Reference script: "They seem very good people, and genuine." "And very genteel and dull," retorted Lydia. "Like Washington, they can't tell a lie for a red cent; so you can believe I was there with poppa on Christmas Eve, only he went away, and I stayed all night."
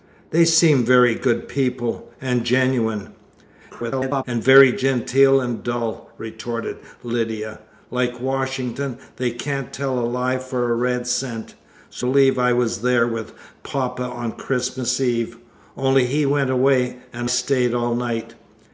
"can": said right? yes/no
no